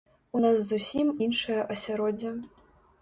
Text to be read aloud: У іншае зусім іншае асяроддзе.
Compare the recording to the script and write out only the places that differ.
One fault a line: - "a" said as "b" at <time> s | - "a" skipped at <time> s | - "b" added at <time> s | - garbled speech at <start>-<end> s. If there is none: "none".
- "іншае" said as "нас" at 0.4 s